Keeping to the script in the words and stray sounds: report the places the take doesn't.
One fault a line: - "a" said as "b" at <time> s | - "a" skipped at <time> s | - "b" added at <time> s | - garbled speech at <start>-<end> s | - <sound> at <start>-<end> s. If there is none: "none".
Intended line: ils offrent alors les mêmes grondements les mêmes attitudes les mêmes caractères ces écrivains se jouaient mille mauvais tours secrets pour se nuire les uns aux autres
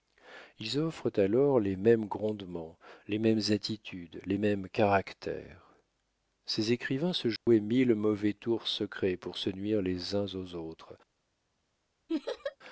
- dropout at 7.4-7.5 s
- laugh at 12.1-12.6 s